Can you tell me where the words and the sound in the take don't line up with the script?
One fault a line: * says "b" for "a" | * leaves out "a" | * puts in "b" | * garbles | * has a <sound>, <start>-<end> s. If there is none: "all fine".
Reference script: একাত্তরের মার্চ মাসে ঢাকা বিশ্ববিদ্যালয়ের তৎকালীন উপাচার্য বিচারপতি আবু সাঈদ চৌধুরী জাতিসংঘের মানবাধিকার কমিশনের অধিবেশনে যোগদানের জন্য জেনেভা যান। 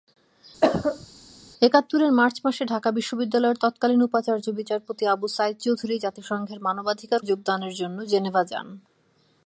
* has a cough, 0.6-1.1 s
* leaves out "কমিশনের অধিবেশনে"